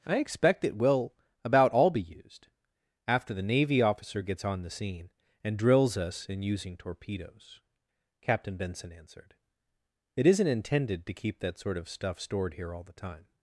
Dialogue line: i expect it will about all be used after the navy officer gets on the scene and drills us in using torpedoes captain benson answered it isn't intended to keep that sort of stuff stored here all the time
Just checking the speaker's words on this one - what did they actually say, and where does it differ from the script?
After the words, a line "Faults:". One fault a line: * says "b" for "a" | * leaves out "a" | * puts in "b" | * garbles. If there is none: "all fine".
i expect it will about all be used after the navy officer gets on the scene and drills us in using torpedoes captain benson answered it isn't intended to keep that sort of stuff stored here all the time
Faults:
all fine